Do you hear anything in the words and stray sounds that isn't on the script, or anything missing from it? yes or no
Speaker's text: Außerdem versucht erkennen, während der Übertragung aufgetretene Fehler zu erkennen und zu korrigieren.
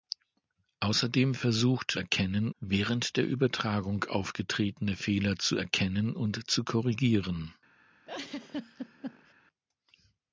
yes